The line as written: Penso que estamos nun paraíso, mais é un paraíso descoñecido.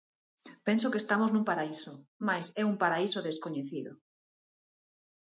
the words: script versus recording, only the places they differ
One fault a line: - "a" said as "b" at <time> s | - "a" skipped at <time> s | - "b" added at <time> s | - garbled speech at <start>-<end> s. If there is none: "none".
none